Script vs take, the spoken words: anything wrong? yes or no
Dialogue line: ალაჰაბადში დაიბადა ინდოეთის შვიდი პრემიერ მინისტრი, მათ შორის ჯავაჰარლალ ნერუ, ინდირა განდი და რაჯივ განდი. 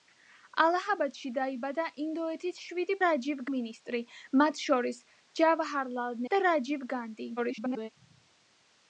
yes